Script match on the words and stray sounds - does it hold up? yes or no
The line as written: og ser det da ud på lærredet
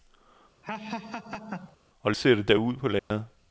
no